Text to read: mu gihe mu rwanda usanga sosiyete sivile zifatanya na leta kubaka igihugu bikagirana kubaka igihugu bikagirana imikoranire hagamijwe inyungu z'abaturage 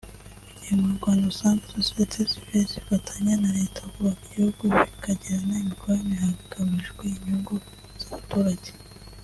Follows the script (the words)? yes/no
no